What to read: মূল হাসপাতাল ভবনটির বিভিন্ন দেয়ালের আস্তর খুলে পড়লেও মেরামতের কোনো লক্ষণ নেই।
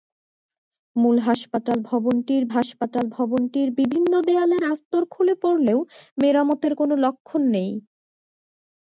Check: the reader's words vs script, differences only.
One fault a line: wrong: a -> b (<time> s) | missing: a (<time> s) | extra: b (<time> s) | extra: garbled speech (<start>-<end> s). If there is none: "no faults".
extra: হাসপাতাল ভবনটির (2.6 s)